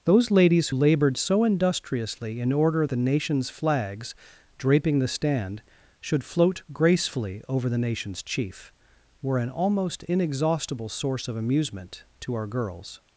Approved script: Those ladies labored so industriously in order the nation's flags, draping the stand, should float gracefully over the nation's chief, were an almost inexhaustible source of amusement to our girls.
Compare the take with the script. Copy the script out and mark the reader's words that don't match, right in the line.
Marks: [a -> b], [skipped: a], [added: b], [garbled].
Those ladies labored so industriously in order the nation's flags, draping the stand, should float gracefully over the nation's chief, were an almost inexhaustible source of amusement to our girls.